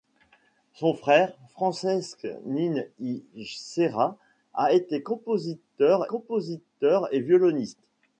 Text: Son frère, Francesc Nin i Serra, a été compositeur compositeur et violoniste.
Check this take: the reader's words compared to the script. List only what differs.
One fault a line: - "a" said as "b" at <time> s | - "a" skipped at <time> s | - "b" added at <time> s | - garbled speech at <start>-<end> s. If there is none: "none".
none